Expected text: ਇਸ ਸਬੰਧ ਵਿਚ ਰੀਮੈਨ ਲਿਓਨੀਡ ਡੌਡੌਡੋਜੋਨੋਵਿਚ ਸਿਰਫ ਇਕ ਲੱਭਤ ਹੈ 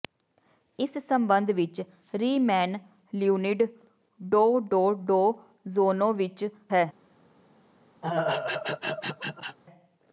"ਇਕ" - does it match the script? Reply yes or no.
no